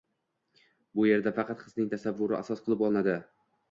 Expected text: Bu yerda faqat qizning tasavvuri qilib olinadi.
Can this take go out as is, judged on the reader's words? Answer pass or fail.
fail